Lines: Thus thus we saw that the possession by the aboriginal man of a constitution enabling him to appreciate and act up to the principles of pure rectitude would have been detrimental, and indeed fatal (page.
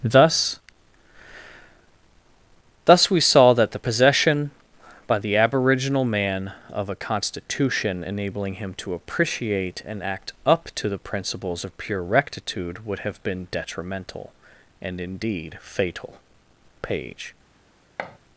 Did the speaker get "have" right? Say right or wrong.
right